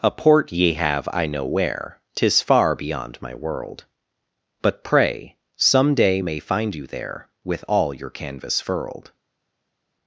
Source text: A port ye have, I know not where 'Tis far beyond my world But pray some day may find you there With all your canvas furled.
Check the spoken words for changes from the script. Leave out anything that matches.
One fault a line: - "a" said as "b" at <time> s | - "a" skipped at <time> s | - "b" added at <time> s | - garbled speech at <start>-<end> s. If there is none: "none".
- "not" skipped at 1.4 s